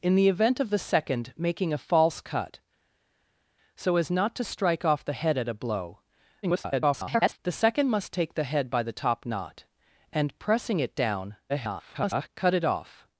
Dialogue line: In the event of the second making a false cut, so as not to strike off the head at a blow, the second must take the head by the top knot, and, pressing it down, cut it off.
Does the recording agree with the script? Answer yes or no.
no